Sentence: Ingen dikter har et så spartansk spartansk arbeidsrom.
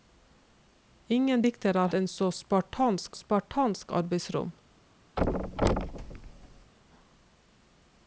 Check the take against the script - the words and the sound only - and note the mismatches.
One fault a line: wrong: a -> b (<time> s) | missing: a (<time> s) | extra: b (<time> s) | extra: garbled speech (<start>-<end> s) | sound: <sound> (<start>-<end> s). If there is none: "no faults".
sound: thud (5.2-6.7 s)